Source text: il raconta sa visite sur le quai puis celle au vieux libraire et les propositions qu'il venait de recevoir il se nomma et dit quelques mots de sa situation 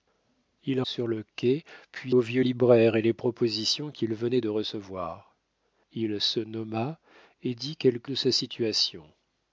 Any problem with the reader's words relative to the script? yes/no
yes